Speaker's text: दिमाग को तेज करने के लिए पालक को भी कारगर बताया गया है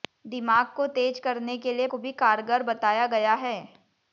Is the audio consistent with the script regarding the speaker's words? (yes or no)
no